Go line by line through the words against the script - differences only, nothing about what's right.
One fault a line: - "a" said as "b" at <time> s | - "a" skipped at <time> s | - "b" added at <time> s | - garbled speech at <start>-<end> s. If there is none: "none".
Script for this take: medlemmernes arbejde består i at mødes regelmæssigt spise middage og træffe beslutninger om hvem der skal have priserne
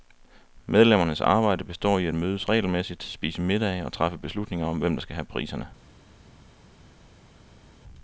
none